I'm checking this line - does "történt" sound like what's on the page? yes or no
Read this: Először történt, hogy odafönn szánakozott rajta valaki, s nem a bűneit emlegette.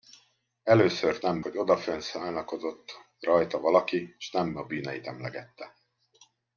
no